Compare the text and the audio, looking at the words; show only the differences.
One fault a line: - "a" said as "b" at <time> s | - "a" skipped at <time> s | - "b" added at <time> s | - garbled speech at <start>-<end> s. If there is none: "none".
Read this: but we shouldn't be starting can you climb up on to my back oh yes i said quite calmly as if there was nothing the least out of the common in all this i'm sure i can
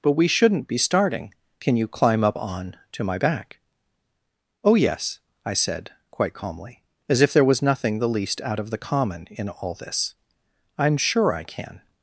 none